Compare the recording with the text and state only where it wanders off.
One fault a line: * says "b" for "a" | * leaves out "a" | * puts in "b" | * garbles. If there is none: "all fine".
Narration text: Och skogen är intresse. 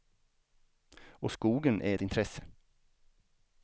all fine